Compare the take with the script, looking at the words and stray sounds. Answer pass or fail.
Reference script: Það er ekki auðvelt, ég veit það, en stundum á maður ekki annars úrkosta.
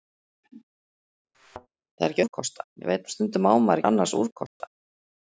fail